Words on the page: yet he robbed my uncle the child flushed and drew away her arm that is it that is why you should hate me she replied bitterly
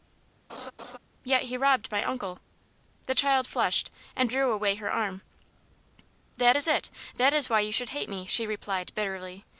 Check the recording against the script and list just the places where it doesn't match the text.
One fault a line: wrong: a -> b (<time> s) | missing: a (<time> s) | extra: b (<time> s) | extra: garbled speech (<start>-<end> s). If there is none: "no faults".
no faults